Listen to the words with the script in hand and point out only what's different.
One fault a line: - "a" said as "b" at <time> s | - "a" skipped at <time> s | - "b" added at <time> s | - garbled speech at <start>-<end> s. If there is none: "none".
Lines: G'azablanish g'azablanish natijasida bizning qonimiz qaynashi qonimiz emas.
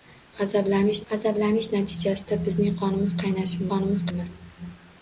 none